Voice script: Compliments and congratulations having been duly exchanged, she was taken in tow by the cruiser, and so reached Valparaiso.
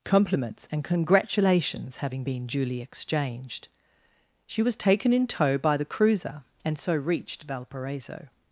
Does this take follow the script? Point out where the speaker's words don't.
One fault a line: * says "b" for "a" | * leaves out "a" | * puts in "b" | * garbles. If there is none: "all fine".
all fine